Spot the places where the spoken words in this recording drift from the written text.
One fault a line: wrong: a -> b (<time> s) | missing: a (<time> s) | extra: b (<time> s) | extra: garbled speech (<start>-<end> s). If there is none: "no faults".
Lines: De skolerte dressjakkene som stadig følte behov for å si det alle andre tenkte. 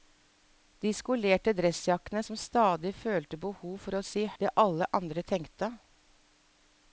no faults